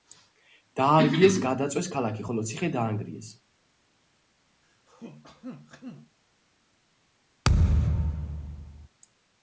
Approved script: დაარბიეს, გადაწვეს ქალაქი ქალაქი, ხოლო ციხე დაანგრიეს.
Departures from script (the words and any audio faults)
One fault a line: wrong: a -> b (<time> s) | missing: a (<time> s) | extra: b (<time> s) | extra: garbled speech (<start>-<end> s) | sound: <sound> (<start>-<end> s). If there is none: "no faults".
missing: ქალაქი (2.2 s)
sound: throat clearing (4.6-6.2 s)
sound: thud (7.4-8.9 s)